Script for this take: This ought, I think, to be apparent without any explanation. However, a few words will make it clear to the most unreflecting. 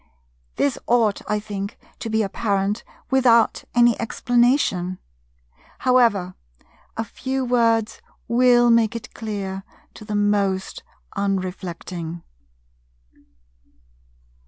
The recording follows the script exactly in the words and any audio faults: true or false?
true